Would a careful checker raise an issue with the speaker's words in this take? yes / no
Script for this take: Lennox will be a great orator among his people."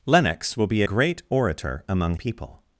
yes